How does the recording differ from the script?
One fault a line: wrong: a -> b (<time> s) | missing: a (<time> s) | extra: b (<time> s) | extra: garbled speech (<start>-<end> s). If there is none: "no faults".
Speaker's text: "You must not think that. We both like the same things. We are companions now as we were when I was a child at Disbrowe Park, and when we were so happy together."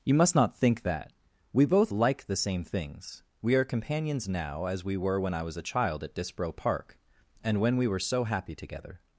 no faults